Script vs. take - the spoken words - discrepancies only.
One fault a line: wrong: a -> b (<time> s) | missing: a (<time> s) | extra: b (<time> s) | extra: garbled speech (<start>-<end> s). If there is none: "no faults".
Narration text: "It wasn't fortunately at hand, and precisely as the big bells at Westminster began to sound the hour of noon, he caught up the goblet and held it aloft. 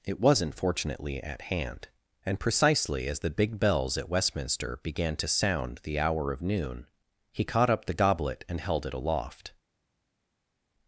no faults